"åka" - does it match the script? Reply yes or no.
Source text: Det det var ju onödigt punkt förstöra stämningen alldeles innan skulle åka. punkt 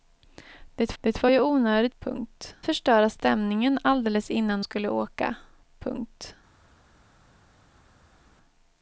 yes